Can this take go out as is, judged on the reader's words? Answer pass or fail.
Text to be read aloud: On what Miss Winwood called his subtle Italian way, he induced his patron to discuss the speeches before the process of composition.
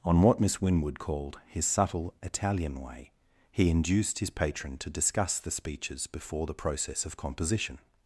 pass